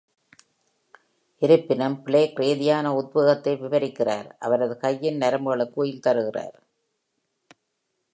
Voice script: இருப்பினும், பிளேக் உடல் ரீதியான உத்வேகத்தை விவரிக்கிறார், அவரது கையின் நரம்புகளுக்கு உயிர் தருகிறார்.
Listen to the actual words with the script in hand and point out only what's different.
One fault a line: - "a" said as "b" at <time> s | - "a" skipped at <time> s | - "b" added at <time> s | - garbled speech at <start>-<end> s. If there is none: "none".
- "உடல்" skipped at 2.4 s